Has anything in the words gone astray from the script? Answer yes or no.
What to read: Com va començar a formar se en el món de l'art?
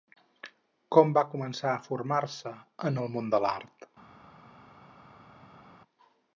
no